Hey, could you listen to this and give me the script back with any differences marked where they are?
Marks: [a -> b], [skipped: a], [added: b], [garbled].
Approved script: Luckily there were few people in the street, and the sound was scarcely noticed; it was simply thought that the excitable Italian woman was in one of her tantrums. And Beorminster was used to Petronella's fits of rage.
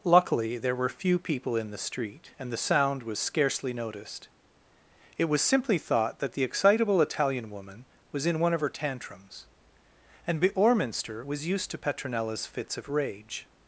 Luckily there were few people in the street, and the sound was scarcely noticed; it was simply thought that the excitable Italian woman was in one of her tantrums. And Beorminster was used to Petronella's fits of rage.